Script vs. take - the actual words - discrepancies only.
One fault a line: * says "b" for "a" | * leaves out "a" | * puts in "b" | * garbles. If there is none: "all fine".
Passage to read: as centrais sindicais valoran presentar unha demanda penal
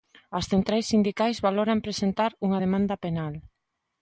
all fine